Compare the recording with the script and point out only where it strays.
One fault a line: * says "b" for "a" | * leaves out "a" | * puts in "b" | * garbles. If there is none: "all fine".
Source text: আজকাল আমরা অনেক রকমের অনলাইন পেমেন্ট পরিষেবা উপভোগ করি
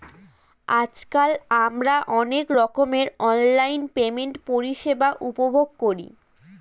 all fine